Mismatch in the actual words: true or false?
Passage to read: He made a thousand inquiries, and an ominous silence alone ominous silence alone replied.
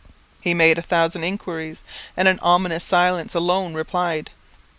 true